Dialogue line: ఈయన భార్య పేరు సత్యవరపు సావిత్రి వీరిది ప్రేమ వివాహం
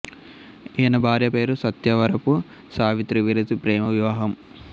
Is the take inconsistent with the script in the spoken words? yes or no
no